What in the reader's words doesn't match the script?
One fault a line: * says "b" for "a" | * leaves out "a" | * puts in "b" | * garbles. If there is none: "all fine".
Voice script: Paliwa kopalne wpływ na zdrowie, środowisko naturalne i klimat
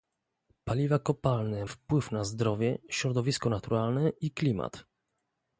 all fine